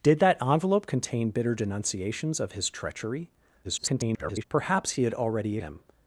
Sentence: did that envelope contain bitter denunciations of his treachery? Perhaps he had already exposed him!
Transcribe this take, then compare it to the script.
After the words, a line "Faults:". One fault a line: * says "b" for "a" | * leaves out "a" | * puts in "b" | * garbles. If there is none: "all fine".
did that envelope contain bitter denunciations of his treachery? [garbled] Perhaps he had already him!
Faults:
* garbles
* leaves out "exposed"